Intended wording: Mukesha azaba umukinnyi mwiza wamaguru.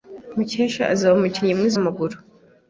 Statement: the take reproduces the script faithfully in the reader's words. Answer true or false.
true